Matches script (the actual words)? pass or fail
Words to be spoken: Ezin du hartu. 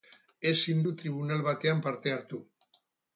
fail